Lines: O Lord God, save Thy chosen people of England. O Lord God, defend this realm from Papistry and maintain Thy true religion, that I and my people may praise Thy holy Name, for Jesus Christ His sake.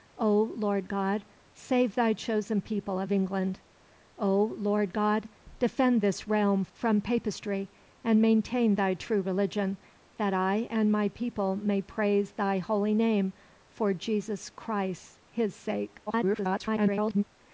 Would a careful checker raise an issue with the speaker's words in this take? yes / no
yes